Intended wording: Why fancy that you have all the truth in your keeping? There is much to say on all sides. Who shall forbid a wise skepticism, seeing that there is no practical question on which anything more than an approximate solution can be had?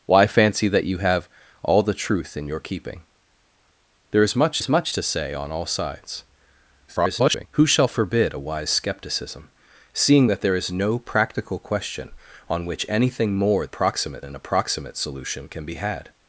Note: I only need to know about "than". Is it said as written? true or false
false